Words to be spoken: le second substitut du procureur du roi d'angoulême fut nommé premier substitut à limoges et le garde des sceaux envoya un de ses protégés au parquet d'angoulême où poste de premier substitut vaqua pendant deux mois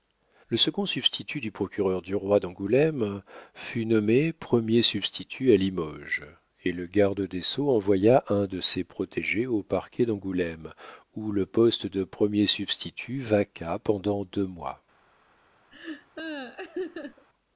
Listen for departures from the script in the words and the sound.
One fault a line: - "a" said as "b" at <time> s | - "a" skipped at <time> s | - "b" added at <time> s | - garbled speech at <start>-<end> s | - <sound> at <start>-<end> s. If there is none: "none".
- "le" added at 11.3 s
- laugh at 15.7-17.3 s